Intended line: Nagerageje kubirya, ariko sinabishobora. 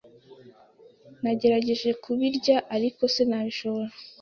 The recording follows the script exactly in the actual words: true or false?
true